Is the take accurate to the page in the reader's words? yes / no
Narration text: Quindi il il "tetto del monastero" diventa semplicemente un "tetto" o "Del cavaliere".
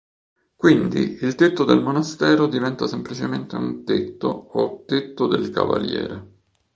no